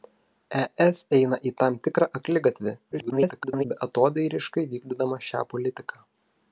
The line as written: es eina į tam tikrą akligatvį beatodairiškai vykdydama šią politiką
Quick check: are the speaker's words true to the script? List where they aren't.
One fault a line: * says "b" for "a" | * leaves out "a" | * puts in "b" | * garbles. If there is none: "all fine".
* garbles